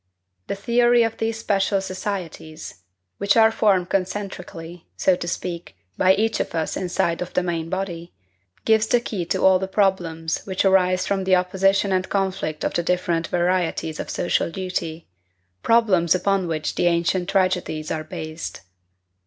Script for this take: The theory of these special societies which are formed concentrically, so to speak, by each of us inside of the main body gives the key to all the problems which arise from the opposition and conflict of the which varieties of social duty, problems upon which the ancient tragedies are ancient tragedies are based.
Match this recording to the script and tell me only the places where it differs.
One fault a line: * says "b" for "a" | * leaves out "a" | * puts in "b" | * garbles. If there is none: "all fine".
* says "different" for "which"
* leaves out "ancient tragedies are"